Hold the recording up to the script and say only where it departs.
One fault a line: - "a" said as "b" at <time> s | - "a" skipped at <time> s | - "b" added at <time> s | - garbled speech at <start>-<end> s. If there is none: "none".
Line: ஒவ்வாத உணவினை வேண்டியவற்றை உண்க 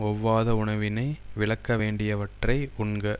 - "விலக்க" added at 1.3 s